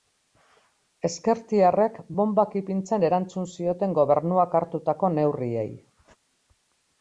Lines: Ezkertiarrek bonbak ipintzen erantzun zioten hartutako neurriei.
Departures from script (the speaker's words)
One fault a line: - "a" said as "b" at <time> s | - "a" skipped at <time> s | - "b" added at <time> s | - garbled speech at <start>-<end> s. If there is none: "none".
- "gobernuak" added at 4.0 s